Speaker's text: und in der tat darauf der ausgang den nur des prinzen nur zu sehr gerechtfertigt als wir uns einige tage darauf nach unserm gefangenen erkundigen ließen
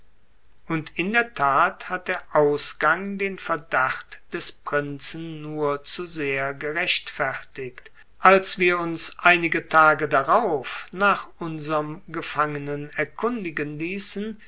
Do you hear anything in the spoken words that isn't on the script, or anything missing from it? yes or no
yes